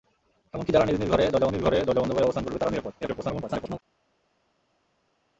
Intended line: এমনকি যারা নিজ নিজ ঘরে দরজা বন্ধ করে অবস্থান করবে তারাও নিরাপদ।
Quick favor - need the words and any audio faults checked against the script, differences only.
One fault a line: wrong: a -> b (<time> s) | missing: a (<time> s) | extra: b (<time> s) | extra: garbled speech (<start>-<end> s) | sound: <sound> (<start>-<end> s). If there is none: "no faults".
extra: নিজ ঘরে দরজা (1.5 s)
extra: garbled speech (3.0-3.8 s)